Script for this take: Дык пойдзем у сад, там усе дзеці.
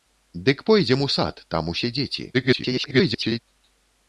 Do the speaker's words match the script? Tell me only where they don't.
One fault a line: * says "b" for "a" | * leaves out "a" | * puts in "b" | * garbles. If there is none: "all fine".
* garbles